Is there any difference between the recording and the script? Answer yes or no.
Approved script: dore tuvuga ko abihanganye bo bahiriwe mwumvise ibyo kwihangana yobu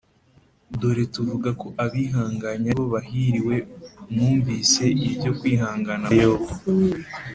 no